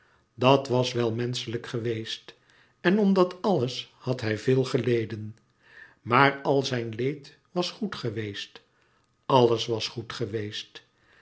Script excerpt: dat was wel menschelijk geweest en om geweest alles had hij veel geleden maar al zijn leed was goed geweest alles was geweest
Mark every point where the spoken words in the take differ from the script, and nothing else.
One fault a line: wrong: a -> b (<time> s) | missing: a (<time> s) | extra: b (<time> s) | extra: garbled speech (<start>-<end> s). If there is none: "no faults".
wrong: geweest -> dat (3.1 s)
extra: goed (9.9 s)